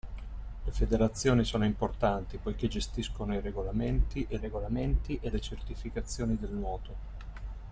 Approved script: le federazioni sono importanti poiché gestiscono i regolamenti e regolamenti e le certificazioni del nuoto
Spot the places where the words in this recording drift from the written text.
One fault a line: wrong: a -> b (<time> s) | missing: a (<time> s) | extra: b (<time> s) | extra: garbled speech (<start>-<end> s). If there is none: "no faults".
no faults